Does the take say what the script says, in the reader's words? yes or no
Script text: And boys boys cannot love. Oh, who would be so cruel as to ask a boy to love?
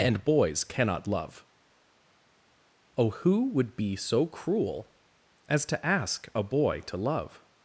no